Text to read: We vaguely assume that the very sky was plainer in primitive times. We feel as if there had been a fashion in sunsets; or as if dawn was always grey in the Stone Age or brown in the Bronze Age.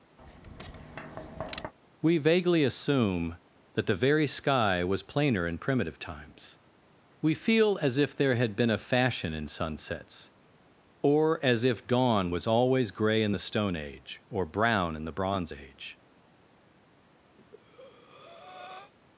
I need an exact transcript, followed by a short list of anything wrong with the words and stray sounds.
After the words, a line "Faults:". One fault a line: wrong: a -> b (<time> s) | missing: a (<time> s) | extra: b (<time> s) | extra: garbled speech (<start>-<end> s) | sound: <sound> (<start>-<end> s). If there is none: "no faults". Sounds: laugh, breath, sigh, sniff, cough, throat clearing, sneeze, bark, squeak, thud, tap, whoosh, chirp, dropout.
We vaguely assume that the very sky was plainer in primitive times. We feel as if there had been a fashion in sunsets; or as if dawn was always grey in the Stone Age or brown in the Bronze Age.
Faults:
sound: tap (0.2-1.7 s)
sound: breath (17.4-18.9 s)